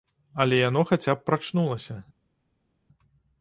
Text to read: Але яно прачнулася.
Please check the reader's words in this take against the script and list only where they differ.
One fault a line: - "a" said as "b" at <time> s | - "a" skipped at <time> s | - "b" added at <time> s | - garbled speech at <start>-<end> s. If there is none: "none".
- "хаця б" added at 0.8 s